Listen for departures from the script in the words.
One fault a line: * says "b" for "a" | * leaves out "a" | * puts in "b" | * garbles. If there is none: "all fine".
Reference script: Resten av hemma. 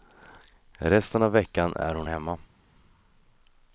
* puts in "veckan är hon"